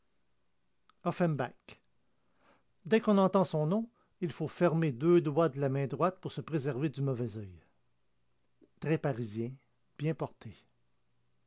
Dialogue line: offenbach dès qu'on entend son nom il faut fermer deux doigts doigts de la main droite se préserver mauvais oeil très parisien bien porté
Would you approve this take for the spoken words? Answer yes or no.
no